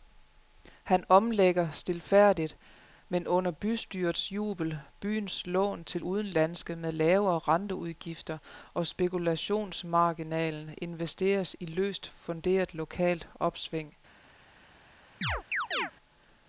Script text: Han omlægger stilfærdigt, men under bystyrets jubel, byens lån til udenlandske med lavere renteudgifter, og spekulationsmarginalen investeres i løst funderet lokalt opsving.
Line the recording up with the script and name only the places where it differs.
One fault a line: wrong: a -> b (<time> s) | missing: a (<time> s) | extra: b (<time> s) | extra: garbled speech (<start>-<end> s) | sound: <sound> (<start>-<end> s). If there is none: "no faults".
sound: chirp (15.2-15.9 s)